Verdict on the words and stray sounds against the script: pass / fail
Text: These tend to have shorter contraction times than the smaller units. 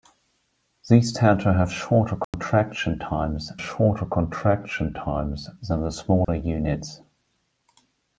fail